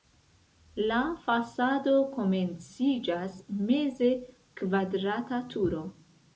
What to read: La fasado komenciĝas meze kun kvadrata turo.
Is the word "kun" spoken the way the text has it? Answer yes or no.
no